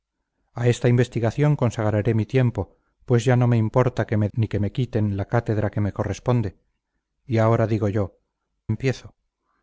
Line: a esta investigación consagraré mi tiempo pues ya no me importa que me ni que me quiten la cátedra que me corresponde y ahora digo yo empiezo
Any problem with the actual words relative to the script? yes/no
no